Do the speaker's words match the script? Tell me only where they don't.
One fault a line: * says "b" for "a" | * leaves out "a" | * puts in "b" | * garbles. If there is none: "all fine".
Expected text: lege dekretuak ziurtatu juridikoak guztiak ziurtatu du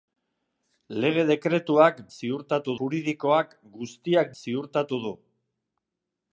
all fine